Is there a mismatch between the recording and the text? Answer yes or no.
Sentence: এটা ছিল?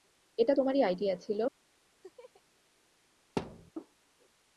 yes